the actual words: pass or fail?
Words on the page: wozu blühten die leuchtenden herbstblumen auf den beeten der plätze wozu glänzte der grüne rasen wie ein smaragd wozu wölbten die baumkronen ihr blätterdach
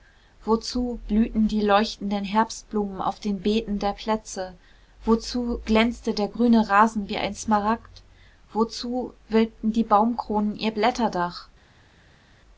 pass